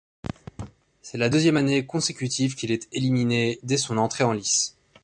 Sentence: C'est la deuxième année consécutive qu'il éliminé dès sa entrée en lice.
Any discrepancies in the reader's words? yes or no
yes